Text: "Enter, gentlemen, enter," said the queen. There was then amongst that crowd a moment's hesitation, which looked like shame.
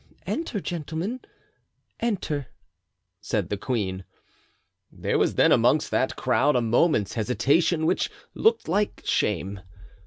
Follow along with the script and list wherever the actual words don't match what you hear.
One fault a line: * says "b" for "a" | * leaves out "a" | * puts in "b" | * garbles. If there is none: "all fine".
all fine